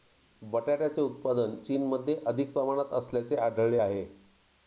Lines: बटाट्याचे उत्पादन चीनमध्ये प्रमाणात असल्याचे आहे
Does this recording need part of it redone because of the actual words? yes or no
yes